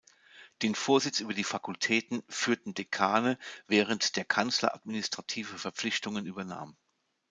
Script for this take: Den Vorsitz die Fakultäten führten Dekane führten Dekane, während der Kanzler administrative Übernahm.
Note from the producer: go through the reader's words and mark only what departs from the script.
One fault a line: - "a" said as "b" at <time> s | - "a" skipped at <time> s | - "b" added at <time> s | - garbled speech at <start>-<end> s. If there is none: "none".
- "über" added at 1.2 s
- "führten Dekane" skipped at 3.4 s
- "Verpflichtungen" added at 5.6 s